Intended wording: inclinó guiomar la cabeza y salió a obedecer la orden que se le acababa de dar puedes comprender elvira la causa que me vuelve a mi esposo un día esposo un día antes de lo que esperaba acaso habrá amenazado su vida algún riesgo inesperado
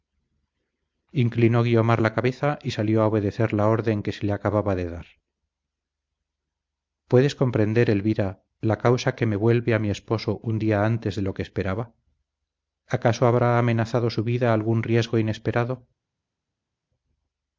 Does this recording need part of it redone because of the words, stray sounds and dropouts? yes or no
yes